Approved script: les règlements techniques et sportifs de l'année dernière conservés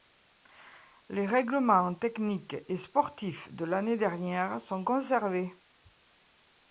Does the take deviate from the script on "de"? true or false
false